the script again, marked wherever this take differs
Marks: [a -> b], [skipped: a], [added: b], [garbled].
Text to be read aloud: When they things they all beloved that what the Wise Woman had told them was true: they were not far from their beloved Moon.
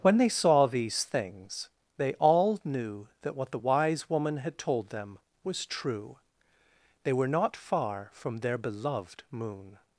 When they [added: saw these] things they all [beloved -> knew] that what the Wise Woman had told them was true: they were not far from their beloved Moon.